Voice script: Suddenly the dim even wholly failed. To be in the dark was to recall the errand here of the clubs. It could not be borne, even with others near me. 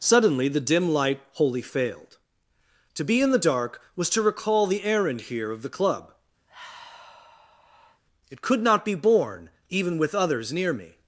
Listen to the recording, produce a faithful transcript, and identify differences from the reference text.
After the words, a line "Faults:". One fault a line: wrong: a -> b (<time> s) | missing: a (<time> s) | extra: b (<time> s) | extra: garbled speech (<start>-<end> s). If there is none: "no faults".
Suddenly the dim light wholly failed. To be in the dark was to recall the errand here of the club. It could not be borne, even with others near me.
Faults:
wrong: even -> light (0.9 s)
wrong: clubs -> club (5.8 s)